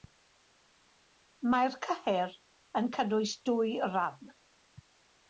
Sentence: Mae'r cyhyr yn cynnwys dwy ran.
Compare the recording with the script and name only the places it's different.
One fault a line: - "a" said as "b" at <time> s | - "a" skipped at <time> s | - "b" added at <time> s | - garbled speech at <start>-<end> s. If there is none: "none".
none